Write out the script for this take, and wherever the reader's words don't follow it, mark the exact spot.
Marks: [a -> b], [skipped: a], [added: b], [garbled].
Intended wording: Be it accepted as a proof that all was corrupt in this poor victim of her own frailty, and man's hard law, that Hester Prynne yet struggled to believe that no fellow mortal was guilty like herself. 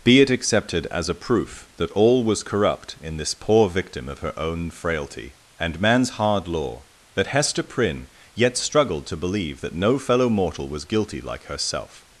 Be it accepted as a proof that all was corrupt in this poor victim of her own frailty, and man's hard law, that Hester Prynne yet struggled to believe that no fellow mortal was guilty like herself.